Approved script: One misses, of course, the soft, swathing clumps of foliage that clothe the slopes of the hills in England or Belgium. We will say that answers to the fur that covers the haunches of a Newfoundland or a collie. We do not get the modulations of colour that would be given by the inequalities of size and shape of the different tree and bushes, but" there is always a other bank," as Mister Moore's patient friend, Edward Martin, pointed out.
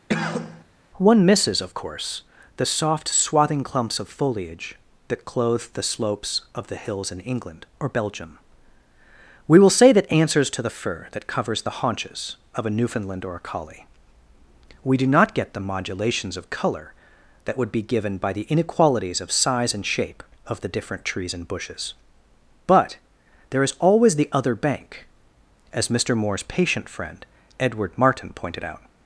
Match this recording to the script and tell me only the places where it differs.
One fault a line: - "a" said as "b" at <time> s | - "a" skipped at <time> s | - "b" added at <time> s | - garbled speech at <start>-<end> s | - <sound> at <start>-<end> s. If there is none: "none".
- cough at 0.1-0.6 s
- "tree" said as "trees" at 21.0 s
- "a" said as "the" at 24.2 s